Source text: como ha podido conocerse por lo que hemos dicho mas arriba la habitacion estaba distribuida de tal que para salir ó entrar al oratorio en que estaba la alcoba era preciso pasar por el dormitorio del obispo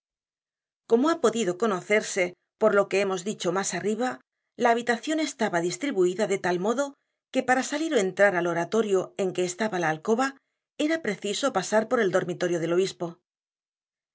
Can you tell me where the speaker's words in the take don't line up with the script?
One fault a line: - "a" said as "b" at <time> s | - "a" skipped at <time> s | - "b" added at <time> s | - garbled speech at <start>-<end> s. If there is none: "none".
- "modo" added at 6.7 s